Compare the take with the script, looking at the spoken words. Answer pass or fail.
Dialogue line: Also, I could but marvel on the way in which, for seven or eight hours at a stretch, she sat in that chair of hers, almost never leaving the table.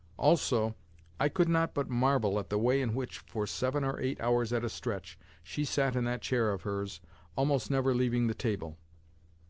fail